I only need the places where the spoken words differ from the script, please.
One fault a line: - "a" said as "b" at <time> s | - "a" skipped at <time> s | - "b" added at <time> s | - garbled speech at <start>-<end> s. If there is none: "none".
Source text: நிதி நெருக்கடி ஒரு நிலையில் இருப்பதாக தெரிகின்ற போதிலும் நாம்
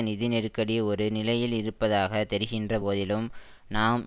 none